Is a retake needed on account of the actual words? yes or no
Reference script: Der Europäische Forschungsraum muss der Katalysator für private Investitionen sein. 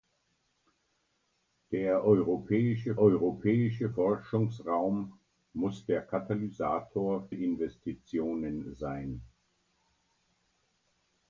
yes